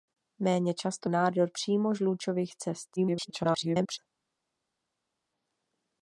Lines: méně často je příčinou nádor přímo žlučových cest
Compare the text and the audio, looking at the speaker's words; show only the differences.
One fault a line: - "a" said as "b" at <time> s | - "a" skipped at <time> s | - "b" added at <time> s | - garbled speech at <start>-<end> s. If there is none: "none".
- "je příčinou" skipped at 1.1 s
- garbled speech at 3.0-4.0 s